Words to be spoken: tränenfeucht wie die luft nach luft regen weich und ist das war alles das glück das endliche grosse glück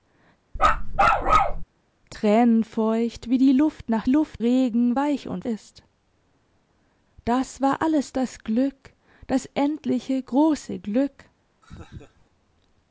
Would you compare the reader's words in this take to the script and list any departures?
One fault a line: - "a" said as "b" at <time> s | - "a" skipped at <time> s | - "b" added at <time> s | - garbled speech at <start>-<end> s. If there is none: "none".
none